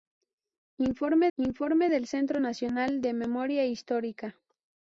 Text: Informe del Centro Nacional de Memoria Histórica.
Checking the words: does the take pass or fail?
fail